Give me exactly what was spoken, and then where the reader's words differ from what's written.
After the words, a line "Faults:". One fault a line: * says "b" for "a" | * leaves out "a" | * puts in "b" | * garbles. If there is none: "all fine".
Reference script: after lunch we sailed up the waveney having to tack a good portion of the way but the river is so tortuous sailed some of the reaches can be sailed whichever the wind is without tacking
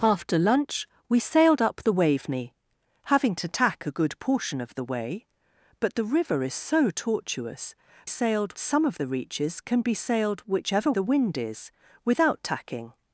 after lunch we sailed up the waveney having to tack a good portion of the way but the river is so tortuous sailed some of the reaches can be sailed whichever the wind is without tacking
Faults:
all fine